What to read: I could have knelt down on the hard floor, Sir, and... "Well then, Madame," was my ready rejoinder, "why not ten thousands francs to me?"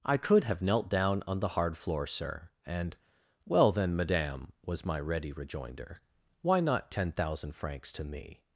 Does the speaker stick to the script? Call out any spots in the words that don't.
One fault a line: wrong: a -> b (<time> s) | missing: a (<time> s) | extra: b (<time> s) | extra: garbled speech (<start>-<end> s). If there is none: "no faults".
wrong: thousands -> thousand (7.1 s)